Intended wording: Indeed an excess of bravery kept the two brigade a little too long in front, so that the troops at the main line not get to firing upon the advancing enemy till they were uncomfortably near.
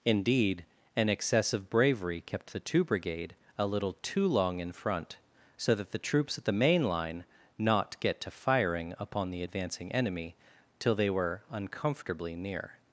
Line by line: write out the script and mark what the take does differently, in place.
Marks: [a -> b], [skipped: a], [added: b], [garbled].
Indeed an excess of bravery kept the two brigade a little too long in front, so that the troops at the main line not get to firing upon the advancing enemy till they were uncomfortably near.